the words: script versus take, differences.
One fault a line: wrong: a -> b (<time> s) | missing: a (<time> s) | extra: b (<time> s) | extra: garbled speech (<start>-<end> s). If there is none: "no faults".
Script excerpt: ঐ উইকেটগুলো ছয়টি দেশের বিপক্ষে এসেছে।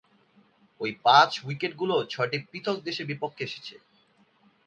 extra: পাঁচ (1.0 s)
extra: পৃথক (2.5 s)